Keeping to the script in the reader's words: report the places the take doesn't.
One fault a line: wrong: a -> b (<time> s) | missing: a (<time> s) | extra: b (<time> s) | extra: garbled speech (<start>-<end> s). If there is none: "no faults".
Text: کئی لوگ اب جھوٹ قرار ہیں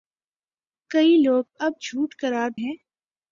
no faults